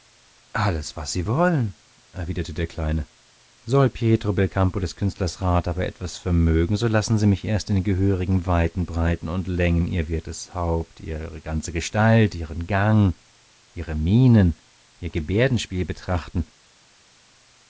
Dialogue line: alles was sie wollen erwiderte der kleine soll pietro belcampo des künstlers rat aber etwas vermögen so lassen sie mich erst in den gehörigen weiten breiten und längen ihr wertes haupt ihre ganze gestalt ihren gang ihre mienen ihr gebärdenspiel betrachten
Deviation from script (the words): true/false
false